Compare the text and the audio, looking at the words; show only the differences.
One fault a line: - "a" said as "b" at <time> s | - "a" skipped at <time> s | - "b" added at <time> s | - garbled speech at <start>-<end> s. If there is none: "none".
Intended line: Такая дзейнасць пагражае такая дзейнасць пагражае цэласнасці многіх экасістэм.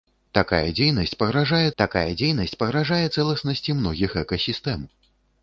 none